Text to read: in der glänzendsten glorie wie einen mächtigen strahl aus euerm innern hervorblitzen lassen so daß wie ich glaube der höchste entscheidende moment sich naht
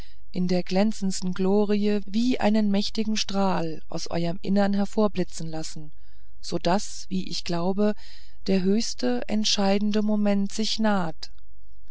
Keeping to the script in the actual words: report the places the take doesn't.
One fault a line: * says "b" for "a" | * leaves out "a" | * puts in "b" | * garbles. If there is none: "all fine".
all fine